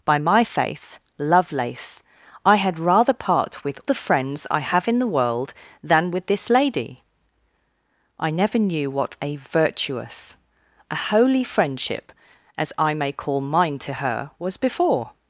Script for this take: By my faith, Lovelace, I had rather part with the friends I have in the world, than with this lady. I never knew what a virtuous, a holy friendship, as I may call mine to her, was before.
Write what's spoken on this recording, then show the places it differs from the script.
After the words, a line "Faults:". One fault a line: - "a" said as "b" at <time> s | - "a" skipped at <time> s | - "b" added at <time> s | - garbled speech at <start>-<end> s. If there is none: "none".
By my faith, Lovelace, I had rather part with the friends I have in the world, than with this lady. I never knew what a virtuous, a holy friendship, as I may call mine to her, was before.
Faults:
none